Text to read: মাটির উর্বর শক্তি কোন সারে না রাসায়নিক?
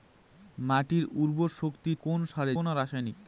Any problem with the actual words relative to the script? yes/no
no